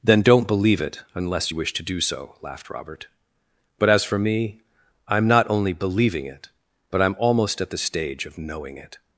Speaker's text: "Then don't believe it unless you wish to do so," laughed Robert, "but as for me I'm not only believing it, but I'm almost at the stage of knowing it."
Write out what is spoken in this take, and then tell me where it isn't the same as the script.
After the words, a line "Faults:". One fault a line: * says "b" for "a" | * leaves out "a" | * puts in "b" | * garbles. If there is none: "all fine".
"Then don't believe it unless you wish to do so," laughed Robert, "but as for me I'm not only believing it, but I'm almost at the stage of knowing it."
Faults:
all fine